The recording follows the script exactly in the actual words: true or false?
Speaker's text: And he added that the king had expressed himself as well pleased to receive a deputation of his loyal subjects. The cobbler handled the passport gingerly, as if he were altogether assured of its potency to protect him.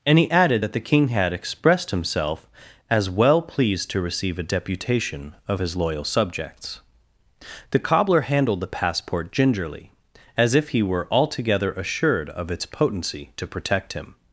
true